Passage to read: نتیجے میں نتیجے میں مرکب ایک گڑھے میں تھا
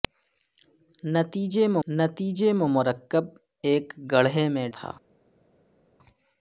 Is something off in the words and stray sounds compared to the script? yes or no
no